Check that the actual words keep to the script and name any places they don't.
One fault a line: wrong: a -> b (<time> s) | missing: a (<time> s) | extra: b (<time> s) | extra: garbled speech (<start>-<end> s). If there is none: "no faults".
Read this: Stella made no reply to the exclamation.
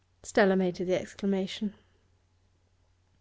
missing: no reply (0.8 s)